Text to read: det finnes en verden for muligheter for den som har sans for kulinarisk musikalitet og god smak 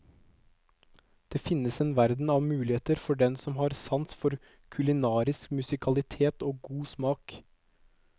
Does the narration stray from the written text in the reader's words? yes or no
yes